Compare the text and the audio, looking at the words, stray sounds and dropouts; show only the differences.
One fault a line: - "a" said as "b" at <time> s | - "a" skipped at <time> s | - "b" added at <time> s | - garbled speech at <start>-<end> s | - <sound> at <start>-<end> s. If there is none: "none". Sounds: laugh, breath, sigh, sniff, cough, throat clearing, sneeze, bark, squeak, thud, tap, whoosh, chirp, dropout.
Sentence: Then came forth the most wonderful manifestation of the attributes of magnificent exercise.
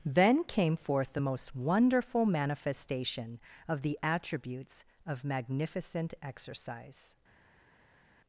none